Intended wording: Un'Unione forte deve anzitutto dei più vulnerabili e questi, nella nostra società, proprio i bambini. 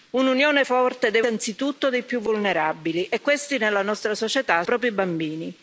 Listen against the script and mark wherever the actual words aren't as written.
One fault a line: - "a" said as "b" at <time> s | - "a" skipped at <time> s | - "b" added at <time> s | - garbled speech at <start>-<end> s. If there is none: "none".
none